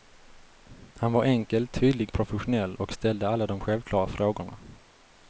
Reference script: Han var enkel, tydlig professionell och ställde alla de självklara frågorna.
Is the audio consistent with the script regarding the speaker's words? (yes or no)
yes